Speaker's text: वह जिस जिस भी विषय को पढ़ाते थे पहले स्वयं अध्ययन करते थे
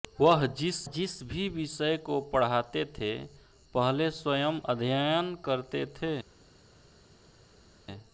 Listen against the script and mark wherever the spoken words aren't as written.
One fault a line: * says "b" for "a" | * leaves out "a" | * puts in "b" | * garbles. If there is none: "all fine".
all fine